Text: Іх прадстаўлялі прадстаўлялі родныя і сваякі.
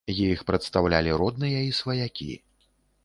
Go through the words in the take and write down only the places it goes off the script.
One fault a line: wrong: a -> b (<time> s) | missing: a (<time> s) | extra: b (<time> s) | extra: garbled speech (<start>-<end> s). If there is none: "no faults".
missing: прадстаўлялі (1.1 s)